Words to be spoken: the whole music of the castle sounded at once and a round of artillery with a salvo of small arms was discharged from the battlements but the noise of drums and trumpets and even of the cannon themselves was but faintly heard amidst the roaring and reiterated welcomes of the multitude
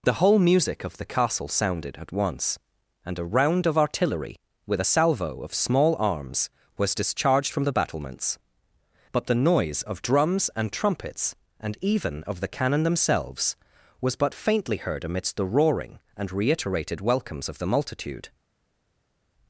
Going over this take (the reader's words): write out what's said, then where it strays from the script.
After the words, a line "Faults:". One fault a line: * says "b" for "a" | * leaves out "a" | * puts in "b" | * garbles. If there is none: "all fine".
the whole music of the castle sounded at once and a round of artillery with a salvo of small arms was discharged from the battlements but the noise of drums and trumpets and even of the cannon themselves was but faintly heard amidst the roaring and reiterated welcomes of the multitude
Faults:
all fine